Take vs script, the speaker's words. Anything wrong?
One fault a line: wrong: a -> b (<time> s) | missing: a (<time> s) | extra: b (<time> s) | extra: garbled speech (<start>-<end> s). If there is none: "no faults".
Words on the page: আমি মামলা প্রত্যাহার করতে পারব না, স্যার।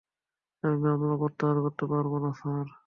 no faults